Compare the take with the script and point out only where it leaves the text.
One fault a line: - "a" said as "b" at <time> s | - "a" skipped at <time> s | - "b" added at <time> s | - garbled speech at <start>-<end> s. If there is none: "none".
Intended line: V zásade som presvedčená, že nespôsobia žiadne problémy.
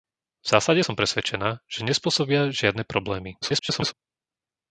- garbled speech at 3.4-3.9 s